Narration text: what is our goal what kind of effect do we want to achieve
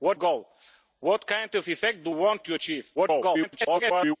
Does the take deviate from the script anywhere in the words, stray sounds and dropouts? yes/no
yes